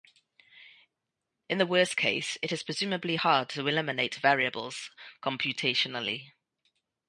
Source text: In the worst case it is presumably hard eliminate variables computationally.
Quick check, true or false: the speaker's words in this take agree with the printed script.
false